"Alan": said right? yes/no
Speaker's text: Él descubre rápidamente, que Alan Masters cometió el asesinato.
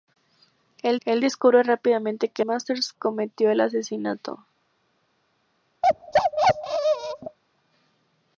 no